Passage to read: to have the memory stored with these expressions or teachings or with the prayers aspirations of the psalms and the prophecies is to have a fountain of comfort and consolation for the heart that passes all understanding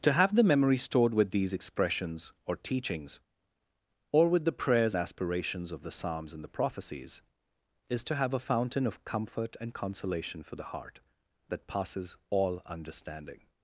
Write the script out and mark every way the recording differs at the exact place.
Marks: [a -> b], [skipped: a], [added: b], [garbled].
to have the memory stored with these expressions or teachings or with the prayers aspirations of the psalms and the prophecies is to have a fountain of comfort and consolation for the heart that passes all understanding